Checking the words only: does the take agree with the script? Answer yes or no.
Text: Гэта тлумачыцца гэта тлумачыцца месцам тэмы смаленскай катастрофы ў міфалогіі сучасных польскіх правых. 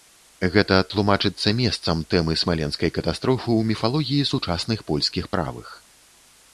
no